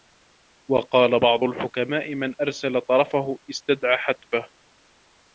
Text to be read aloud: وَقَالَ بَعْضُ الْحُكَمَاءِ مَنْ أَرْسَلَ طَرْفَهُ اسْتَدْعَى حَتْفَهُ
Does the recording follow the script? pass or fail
pass